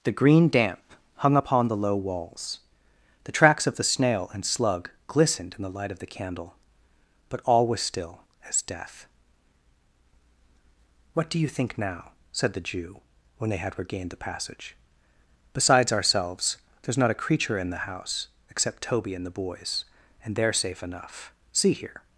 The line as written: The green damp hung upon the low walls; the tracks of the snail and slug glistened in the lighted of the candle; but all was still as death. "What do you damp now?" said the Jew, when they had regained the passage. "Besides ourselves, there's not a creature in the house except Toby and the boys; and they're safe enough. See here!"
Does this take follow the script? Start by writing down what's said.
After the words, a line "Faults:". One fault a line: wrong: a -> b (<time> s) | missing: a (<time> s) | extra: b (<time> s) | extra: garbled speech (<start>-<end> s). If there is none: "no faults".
The green damp hung upon the low walls; the tracks of the snail and slug glistened in the light of the candle; but all was still as death. "What do you think now?" said the Jew, when they had regained the passage. "Besides ourselves, there's not a creature in the house except Toby and the boys; and they're safe enough. See here!"
Faults:
wrong: lighted -> light (5.8 s)
wrong: damp -> think (11.5 s)